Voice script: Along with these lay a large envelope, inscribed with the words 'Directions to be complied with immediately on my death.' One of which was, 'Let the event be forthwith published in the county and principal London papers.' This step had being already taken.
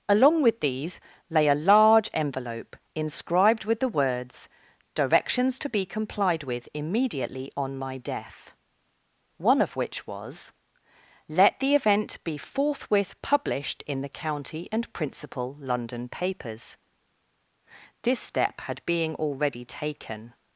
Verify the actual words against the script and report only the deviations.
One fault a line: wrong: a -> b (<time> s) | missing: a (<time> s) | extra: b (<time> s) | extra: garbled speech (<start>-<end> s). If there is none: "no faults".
no faults